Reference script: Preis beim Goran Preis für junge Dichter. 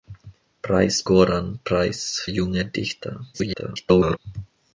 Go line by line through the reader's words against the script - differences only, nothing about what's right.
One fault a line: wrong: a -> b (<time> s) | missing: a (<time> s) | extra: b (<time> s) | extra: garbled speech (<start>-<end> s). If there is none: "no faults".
missing: beim (1.0 s)
missing: für (2.3 s)
extra: garbled speech (3.3-4.2 s)